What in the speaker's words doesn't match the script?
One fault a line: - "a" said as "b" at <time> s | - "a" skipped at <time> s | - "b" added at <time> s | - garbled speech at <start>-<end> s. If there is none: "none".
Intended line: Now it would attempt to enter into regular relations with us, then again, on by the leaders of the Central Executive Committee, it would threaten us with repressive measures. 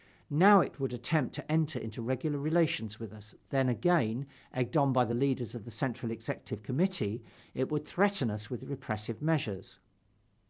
- "egged" added at 4.5 s